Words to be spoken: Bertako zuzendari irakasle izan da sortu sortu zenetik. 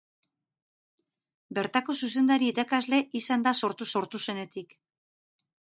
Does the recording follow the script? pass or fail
pass